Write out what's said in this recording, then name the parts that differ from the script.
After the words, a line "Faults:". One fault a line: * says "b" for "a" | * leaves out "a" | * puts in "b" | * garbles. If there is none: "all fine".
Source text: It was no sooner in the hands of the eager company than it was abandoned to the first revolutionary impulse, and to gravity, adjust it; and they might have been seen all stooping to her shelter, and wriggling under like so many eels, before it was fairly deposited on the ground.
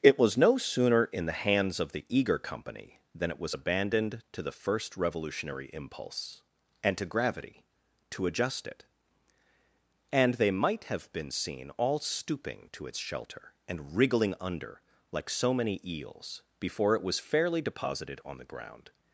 It was no sooner in the hands of the eager company than it was abandoned to the first revolutionary impulse, and to gravity, to adjust it; and they might have been seen all stooping to its shelter, and wriggling under like so many eels, before it was fairly deposited on the ground.
Faults:
* puts in "to"
* says "its" for "her"